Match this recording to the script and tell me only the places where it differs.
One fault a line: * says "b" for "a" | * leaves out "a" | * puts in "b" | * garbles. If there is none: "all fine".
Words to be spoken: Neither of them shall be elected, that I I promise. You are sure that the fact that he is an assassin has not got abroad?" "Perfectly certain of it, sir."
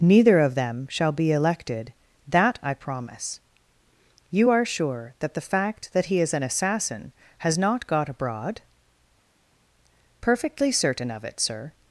* leaves out "I"